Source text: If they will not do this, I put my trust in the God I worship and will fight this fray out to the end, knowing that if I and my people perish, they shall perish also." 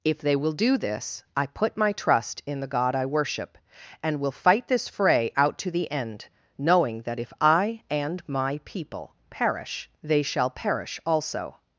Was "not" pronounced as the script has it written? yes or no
no